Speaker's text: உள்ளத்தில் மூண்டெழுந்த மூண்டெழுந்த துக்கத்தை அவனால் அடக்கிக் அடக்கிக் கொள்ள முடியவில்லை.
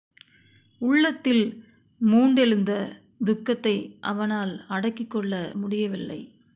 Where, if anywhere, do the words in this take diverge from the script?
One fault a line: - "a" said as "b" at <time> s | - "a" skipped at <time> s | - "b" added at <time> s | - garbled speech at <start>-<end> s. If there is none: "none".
- "மூண்டெழுந்த" skipped at 2.7 s
- "அடக்கிக்" skipped at 5.1 s